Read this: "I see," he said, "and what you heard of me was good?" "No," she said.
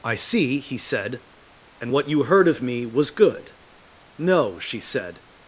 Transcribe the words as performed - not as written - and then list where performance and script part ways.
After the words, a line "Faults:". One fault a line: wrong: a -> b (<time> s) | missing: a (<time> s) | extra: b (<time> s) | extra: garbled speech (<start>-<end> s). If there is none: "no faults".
"I see," he said, "and what you heard of me was good?" "No," she said.
Faults:
no faults